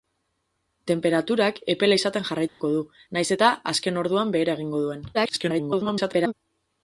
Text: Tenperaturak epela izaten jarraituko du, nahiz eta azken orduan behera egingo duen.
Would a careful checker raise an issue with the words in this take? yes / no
yes